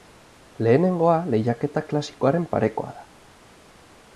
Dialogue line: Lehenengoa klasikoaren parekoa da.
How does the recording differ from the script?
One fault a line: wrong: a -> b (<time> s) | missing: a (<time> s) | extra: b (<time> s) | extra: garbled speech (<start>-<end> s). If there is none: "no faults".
extra: lehiaketa (1.3 s)